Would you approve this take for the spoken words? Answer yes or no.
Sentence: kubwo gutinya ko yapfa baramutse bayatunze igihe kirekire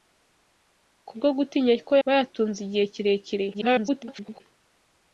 no